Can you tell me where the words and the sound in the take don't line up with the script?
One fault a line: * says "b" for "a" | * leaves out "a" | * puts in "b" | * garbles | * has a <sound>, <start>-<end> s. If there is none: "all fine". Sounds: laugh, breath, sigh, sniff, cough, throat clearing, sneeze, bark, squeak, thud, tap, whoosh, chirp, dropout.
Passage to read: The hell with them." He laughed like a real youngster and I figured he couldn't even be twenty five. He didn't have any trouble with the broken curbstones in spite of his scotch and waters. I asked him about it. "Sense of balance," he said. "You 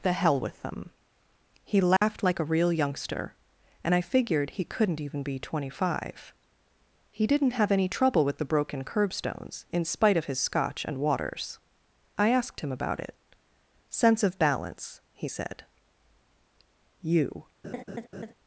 * has a dropout, 2.0-2.0 s
* has a laugh, 17.6-18.3 s